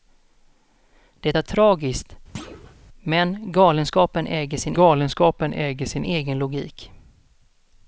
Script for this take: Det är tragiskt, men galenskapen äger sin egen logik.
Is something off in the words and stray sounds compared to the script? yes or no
yes